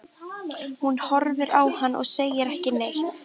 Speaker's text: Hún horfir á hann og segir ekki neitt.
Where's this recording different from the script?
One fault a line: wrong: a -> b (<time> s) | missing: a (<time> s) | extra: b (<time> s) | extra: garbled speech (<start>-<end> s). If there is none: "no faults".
no faults